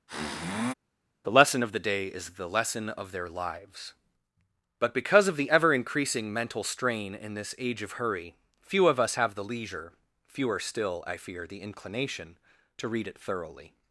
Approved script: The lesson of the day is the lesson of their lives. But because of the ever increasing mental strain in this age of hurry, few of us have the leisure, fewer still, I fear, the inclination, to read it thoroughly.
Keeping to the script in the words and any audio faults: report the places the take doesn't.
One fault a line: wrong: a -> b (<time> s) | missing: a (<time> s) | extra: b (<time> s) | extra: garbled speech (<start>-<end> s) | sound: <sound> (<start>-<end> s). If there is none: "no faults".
sound: sniff (0.1-0.7 s)